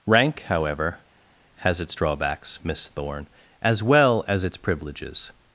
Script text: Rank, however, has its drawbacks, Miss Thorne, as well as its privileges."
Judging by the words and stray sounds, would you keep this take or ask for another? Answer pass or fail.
pass